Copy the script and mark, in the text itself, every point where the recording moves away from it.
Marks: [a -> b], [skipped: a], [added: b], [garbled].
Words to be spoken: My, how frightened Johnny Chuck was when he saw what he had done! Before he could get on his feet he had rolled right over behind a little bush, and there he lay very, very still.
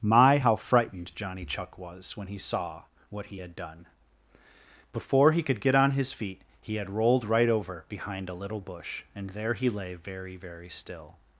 My, how frightened Johnny Chuck was when he saw what he had done! Before he could get on his feet he had rolled right over behind a little bush, and there he lay very, very still.